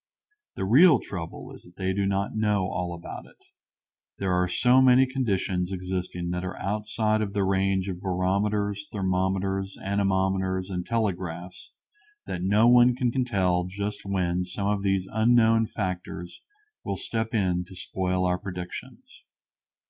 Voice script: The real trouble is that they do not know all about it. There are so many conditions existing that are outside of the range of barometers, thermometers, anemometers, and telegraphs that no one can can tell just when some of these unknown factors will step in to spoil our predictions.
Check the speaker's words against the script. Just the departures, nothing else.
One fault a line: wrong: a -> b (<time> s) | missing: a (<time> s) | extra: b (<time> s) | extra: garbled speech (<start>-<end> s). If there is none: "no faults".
no faults